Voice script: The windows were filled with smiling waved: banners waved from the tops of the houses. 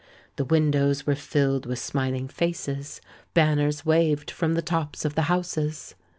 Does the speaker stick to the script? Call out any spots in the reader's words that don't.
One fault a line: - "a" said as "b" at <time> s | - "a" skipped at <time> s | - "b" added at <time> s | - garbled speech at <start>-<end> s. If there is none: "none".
- "waved" said as "faces" at 2.3 s